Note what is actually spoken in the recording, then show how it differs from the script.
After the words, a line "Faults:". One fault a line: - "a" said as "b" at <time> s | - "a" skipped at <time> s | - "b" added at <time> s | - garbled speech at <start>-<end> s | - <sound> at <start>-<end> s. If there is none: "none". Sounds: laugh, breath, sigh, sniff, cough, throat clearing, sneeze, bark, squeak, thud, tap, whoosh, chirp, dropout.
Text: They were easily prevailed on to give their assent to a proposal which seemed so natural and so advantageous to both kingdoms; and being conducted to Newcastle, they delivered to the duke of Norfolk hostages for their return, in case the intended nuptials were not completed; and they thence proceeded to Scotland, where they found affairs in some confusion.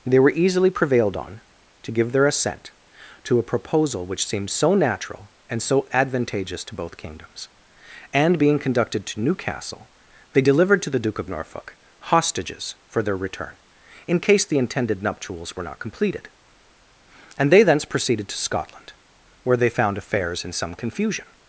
They were easily prevailed on to give their assent to a proposal which seemed so natural and so advantageous to both kingdoms; and being conducted to Newcastle, they delivered to the duke of Norfolk hostages for their return, in case the intended nuptials were not completed; and they thence proceeded to Scotland, where they found affairs in some confusion.
Faults:
none